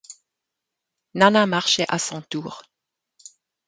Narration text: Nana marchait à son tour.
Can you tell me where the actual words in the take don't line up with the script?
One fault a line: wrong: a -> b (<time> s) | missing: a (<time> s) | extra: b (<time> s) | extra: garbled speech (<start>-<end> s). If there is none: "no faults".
no faults